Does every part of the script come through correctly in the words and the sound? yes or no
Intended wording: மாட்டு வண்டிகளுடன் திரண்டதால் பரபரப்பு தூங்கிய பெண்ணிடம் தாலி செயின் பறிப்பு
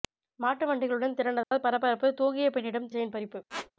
no